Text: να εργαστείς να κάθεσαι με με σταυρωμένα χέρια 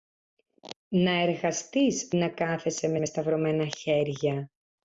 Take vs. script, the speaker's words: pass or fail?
pass